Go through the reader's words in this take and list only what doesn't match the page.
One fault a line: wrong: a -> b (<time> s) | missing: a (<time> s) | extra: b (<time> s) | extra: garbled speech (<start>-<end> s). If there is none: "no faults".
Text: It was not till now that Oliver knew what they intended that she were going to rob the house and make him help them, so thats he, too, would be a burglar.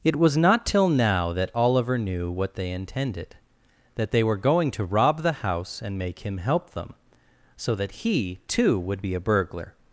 wrong: she -> they (4.1 s)
wrong: thats -> that (7.8 s)